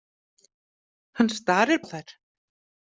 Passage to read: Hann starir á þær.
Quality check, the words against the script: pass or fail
pass